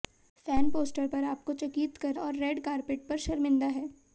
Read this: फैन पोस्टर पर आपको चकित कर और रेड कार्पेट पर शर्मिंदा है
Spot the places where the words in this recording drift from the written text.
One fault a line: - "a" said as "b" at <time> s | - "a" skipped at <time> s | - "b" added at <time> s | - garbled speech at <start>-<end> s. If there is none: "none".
none